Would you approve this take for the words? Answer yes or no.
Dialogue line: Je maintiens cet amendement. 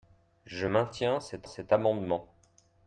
no